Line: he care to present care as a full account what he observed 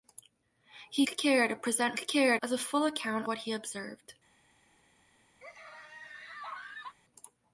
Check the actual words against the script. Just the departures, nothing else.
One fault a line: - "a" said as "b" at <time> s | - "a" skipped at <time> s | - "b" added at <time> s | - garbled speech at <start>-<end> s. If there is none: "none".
none